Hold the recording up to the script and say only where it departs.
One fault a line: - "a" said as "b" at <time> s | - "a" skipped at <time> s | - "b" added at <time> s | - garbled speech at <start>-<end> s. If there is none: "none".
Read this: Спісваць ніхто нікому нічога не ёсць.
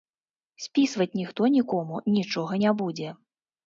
- "ёсць" said as "будзе" at 2.8 s